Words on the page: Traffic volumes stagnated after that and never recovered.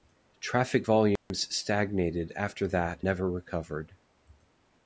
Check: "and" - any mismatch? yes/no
yes